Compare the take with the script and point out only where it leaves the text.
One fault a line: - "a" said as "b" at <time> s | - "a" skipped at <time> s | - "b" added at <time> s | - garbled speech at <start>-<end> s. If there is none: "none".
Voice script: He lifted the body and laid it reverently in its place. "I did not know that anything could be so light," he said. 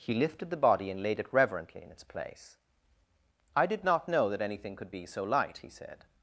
none